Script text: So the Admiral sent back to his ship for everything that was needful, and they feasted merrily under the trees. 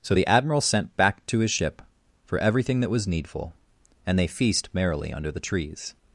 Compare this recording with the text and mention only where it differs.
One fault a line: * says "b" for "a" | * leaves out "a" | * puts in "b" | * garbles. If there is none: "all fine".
* says "feast" for "feasted"